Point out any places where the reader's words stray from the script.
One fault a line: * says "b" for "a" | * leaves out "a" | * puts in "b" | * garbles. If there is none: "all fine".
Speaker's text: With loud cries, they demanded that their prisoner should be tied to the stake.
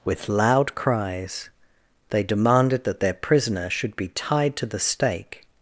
all fine